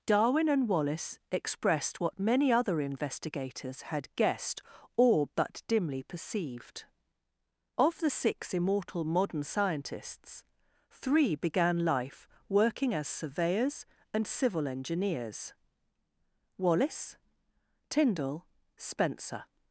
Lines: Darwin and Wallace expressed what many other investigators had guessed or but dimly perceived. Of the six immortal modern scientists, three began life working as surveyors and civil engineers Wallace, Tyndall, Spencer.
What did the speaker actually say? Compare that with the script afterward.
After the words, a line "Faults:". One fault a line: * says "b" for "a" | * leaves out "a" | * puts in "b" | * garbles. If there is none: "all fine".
Darwin and Wallace expressed what many other investigators had guessed or but dimly perceived. Of the six immortal modern scientists, three began life working as surveyors and civil engineers Wallace, Tyndall, Spencer.
Faults:
all fine